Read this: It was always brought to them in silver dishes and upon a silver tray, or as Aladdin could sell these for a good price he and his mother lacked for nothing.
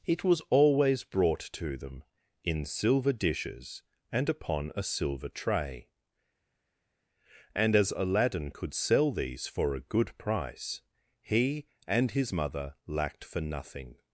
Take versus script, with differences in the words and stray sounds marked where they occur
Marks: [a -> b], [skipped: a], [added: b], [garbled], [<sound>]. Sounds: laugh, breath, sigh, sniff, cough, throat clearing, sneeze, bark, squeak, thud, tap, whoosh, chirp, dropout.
It was always brought to them in silver dishes and upon a silver tray, [or -> and] as Aladdin could sell these for a good price he and his mother lacked for nothing.